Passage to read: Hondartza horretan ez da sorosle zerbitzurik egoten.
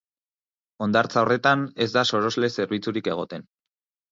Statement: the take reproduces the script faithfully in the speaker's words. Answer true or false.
true